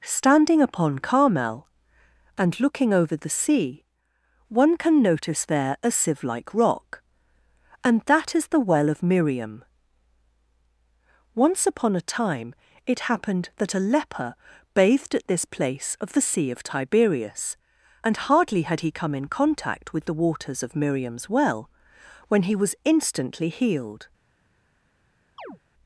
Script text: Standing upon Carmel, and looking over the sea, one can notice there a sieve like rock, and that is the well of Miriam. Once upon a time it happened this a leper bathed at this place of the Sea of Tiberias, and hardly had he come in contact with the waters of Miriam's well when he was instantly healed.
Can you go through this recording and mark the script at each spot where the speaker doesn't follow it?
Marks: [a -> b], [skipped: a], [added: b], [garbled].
Standing upon Carmel, and looking over the sea, one can notice there a sieve like rock, and that is the well of Miriam. Once upon a time it happened [this -> that] a leper bathed at this place of the Sea of Tiberias, and hardly had he come in contact with the waters of Miriam's well when he was instantly healed.